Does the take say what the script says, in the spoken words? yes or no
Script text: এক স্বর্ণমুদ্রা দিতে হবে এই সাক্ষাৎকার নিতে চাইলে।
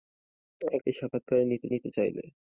no